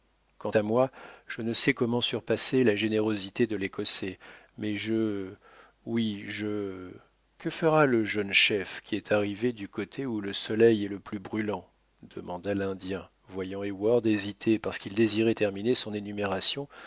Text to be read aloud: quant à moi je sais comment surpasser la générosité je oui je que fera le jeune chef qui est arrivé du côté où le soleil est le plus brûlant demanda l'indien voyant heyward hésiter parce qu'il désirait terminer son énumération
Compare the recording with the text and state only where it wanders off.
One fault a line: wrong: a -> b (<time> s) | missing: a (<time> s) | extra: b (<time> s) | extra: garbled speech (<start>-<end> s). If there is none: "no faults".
extra: ne (1.4 s)
extra: de l'écossais mais (3.5 s)